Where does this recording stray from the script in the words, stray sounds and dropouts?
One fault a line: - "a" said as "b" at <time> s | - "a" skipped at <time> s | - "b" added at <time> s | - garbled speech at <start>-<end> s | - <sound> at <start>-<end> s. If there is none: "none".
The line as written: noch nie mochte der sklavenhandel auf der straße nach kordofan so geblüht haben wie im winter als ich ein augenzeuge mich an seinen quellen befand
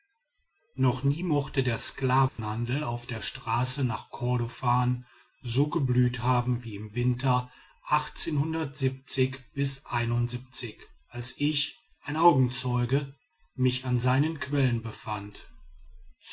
- dropout at 2.3-2.4 s